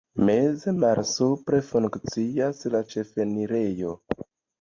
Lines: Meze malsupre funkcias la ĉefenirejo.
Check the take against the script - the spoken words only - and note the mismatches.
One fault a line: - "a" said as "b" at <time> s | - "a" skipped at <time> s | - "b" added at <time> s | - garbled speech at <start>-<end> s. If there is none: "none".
none